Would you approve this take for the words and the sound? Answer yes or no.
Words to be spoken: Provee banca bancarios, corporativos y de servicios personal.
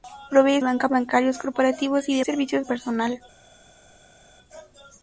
yes